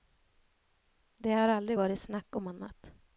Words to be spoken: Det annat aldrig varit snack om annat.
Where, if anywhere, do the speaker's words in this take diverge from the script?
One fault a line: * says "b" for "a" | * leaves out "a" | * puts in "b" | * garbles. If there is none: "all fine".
* says "har" for "annat"